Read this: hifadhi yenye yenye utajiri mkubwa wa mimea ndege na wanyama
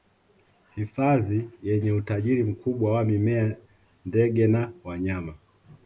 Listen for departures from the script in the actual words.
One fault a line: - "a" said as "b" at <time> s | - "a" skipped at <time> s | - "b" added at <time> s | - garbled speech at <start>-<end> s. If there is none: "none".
- "yenye" skipped at 1.9 s